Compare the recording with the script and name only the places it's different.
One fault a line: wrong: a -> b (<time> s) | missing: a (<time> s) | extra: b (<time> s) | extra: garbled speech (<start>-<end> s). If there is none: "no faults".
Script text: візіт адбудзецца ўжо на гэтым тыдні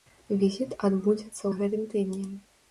missing: ўжо (1.4 s)